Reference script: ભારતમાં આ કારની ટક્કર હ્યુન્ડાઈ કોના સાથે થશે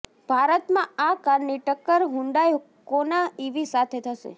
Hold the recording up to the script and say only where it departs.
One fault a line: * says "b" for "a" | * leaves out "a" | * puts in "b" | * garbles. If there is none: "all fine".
* puts in "ઈવી"